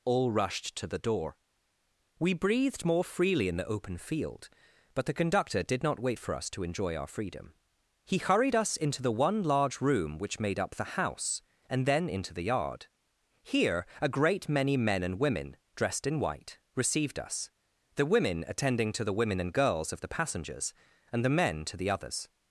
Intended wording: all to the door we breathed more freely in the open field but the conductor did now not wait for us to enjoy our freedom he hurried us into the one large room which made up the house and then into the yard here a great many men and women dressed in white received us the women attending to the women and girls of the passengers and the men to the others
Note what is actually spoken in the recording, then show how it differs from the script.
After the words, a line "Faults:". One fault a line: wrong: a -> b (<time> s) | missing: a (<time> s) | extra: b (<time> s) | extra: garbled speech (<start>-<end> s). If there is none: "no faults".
all rushed to the door we breathed more freely in the open field but the conductor did not wait for us to enjoy our freedom he hurried us into the one large room which made up the house and then into the yard here a great many men and women dressed in white received us the women attending to the women and girls of the passengers and the men to the others
Faults:
extra: rushed (0.3 s)
missing: now (5.8 s)